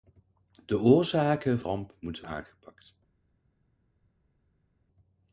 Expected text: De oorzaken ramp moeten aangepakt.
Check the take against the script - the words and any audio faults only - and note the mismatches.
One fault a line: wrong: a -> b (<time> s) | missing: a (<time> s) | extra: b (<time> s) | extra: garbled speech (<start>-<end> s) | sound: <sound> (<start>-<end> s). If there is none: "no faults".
no faults